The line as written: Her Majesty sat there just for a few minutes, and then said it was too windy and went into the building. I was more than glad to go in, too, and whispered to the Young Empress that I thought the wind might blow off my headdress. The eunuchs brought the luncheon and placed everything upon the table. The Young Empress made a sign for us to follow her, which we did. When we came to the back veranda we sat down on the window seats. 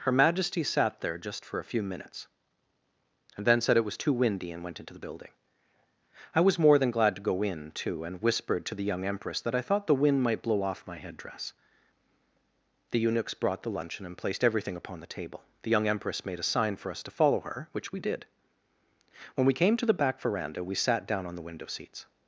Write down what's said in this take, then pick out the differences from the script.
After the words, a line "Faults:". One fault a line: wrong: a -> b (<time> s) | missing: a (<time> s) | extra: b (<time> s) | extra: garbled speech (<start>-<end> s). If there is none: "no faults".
Her Majesty sat there just for a few minutes, and then said it was too windy and went into the building. I was more than glad to go in, too, and whispered to the Young Empress that I thought the wind might blow off my headdress. The eunuchs brought the luncheon and placed everything upon the table. The Young Empress made a sign for us to follow her, which we did. When we came to the back veranda we sat down on the window seats.
Faults:
no faults